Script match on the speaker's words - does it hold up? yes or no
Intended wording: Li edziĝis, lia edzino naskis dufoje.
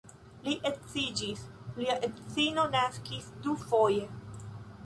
yes